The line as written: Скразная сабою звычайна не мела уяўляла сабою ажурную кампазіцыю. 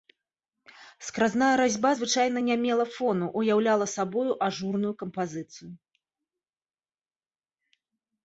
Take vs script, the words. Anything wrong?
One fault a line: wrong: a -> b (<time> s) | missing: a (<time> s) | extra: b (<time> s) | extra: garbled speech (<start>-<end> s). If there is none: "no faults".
wrong: сабою -> разьба (1.6 s)
extra: фону (2.9 s)